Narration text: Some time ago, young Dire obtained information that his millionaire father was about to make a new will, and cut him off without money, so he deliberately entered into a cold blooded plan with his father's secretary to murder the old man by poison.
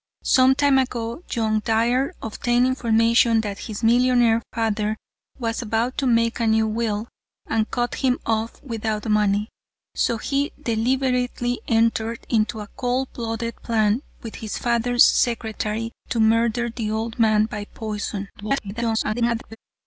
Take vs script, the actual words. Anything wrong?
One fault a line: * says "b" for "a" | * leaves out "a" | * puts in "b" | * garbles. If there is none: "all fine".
* garbles